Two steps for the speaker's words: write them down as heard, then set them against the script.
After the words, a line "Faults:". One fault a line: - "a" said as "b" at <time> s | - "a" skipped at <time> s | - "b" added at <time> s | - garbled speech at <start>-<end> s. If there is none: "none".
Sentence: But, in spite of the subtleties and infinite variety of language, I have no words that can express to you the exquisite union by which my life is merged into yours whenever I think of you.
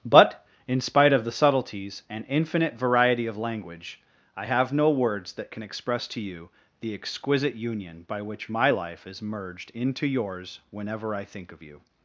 But, in spite of the subtleties and infinite variety of language, I have no words that can express to you the exquisite union by which my life is merged into yours whenever I think of you.
Faults:
none